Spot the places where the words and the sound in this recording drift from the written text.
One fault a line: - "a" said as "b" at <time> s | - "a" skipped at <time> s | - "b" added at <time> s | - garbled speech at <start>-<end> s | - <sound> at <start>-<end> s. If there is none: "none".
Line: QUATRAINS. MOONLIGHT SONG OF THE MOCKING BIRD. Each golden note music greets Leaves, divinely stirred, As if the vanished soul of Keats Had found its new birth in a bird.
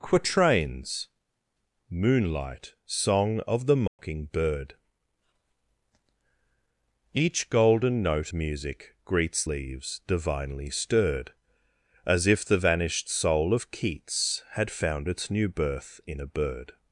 - dropout at 3.9-4.0 s